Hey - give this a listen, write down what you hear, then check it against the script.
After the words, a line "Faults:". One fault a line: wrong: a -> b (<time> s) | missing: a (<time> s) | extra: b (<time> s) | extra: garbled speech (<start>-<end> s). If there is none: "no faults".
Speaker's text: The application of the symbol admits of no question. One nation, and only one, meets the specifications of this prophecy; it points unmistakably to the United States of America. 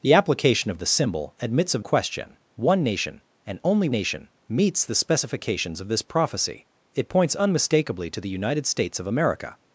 The application of the symbol admits of question. One nation, and only nation, meets the specifications of this prophecy; it points unmistakably to the United States of America.
Faults:
missing: no (1.8 s)
wrong: one -> nation (3.9 s)